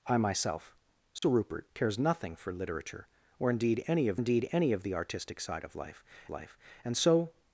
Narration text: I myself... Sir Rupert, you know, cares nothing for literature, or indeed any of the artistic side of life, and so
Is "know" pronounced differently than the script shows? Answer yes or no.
yes